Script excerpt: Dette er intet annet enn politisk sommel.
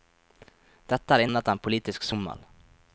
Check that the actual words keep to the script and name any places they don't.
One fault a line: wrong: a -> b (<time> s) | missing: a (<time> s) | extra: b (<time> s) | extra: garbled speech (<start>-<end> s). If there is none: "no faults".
missing: intet (1.2 s)